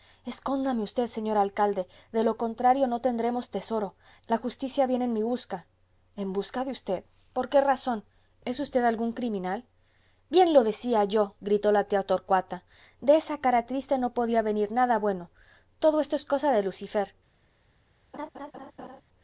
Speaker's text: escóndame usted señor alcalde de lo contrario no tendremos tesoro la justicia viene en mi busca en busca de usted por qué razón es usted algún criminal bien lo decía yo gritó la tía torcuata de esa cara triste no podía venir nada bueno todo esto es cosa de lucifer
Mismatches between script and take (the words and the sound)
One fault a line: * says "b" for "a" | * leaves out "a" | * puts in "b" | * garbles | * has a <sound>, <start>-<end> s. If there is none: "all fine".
* has a laugh, 18.1-19.0 s